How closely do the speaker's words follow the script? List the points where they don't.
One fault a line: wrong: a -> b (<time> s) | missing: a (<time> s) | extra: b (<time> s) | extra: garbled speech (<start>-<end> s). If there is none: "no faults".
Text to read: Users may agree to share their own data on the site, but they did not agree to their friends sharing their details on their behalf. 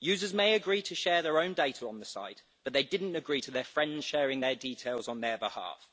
no faults